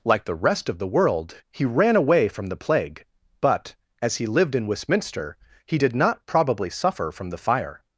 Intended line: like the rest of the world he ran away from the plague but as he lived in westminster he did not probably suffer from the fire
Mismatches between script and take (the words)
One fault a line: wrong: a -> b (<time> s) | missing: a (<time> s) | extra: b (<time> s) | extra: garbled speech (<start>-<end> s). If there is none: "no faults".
no faults